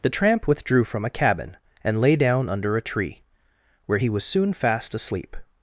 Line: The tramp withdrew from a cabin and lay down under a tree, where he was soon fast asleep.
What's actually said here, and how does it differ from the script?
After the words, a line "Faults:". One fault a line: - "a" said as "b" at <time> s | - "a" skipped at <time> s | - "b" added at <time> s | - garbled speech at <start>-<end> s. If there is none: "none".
The tramp withdrew from a cabin and lay down under a tree, where he was soon fast asleep.
Faults:
none